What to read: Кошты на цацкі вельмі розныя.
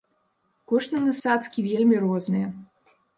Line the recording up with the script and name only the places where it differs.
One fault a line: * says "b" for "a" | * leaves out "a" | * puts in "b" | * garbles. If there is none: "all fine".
all fine